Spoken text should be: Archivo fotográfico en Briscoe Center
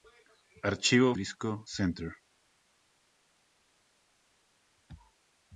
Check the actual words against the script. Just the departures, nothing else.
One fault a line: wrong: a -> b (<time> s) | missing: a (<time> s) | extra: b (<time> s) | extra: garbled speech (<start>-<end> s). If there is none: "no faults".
missing: fotográfico en (1.1 s)